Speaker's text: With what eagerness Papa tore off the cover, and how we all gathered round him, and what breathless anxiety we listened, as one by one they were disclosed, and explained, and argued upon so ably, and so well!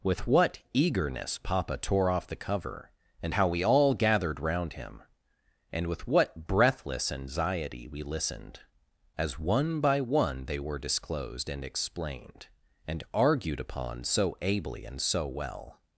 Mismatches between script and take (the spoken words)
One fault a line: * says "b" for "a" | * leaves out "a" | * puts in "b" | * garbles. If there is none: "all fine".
* puts in "with"